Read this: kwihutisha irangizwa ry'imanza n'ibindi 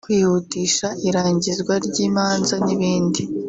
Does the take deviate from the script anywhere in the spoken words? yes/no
no